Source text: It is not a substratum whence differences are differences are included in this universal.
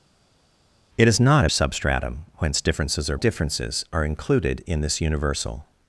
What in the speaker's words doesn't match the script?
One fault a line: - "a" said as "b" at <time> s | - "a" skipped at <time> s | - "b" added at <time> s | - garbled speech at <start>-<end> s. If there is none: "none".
none